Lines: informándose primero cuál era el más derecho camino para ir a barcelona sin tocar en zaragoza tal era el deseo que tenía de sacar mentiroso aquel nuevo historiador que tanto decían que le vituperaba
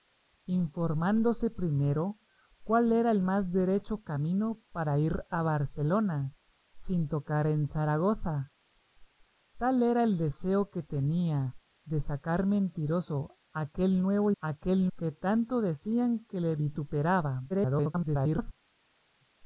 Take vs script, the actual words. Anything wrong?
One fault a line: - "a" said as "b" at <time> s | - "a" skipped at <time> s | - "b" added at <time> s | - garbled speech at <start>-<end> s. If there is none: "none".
- "historiador" said as "aquel" at 14.4 s
- garbled speech at 17.5-18.5 s